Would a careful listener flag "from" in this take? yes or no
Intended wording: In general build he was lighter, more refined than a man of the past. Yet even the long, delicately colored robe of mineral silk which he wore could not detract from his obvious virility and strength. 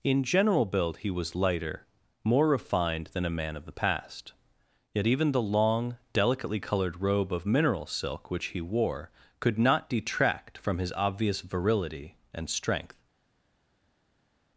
no